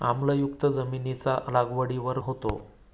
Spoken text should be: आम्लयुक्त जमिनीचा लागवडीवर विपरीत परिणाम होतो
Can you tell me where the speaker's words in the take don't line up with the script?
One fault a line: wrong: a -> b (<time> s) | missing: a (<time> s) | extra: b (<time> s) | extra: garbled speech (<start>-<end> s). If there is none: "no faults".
missing: विपरीत परिणाम (2.2 s)